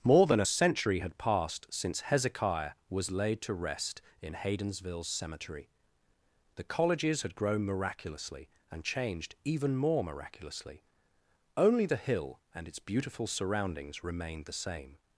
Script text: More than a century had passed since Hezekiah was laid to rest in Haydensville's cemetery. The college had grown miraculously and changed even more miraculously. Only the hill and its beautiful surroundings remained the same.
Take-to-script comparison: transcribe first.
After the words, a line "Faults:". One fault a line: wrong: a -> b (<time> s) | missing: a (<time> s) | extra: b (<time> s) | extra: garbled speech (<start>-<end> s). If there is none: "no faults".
More than a century had passed since Hezekiah was laid to rest in Haydensville's cemetery. The colleges had grown miraculously and changed even more miraculously. Only the hill and its beautiful surroundings remained the same.
Faults:
wrong: college -> colleges (6.6 s)